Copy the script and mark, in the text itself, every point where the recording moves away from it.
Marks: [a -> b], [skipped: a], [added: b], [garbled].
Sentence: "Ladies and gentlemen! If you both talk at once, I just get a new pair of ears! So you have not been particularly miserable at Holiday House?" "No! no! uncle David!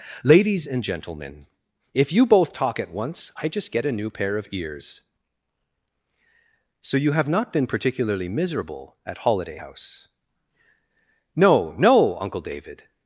"Ladies and gentlemen! If you both talk at once, I just get a new pair of ears! So you have not been particularly miserable at Holiday House?" "No! no! uncle David!